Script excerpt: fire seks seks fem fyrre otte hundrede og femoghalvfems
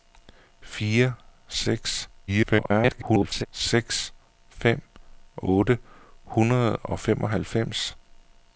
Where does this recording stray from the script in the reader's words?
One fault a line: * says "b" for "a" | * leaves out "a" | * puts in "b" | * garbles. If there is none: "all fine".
* garbles
* leaves out "fyrre"